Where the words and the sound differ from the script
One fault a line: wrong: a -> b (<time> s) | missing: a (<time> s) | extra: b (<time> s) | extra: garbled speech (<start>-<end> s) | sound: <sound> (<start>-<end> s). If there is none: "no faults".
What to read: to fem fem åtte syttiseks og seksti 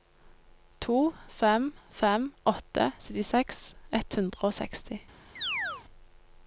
extra: ett hundre (4.0 s)
sound: chirp (5.4-5.8 s)